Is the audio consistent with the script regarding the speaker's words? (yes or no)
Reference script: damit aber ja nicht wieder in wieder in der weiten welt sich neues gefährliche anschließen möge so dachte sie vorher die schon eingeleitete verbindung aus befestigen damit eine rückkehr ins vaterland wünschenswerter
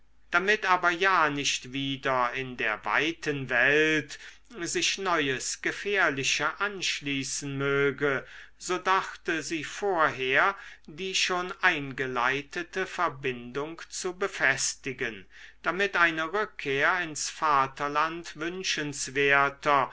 no